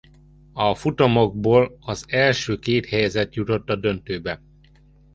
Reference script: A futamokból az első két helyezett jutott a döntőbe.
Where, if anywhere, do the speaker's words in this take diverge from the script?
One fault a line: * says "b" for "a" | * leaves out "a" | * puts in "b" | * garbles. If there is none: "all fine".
all fine